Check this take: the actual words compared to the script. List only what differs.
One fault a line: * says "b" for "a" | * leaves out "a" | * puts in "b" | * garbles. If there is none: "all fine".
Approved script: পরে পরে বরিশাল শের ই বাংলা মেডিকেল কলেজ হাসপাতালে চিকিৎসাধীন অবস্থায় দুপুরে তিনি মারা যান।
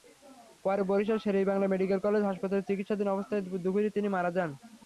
* leaves out "পরে"